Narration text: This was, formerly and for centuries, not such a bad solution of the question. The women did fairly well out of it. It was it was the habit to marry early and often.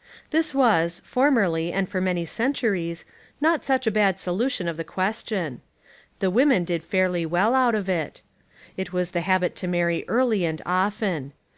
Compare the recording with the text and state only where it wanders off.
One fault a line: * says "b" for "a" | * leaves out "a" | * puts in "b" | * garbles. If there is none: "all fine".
* puts in "many"
* leaves out "it was"